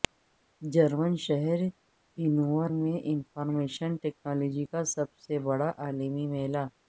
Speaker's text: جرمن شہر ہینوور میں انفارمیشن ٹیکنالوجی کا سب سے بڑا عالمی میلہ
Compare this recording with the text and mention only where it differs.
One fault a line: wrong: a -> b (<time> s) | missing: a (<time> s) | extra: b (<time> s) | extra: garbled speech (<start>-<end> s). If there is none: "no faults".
no faults